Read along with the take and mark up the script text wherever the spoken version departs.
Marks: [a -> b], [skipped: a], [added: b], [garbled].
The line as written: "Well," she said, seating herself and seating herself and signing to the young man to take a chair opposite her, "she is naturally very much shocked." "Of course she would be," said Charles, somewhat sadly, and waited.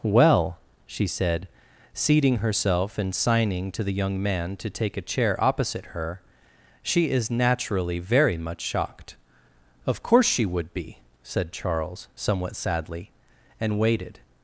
"Well," she said, seating herself and [skipped: seating herself and] signing to the young man to take a chair opposite her, "she is naturally very much shocked." "Of course she would be," said Charles, somewhat sadly, and waited.